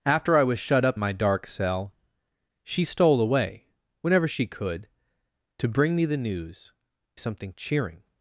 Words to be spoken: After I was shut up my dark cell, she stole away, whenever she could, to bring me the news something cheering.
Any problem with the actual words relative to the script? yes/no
no